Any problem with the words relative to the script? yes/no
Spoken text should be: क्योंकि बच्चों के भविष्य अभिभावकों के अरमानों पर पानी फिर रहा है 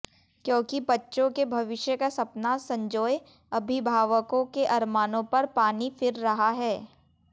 yes